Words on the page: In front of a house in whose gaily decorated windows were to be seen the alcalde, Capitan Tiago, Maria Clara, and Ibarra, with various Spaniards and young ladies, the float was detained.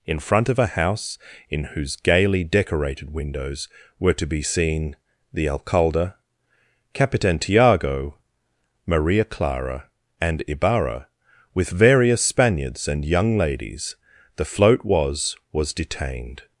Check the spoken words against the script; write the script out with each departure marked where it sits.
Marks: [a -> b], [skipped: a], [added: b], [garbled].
In front of a house in whose gaily decorated windows were to be seen the alcalde, Capitan Tiago, Maria Clara, and Ibarra, with various Spaniards and young ladies, the float was [added: was] detained.